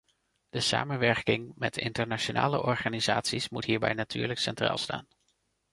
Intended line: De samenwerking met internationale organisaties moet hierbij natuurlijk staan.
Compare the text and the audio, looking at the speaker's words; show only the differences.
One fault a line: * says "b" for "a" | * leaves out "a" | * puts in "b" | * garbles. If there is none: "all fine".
* puts in "centraal"